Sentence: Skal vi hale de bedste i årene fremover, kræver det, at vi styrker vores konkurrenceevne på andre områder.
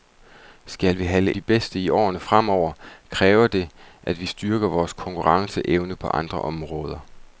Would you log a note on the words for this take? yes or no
no